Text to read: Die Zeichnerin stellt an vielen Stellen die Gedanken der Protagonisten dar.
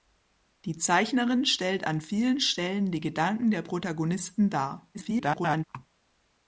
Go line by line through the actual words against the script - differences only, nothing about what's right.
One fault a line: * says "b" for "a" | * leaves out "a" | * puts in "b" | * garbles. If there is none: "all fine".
* garbles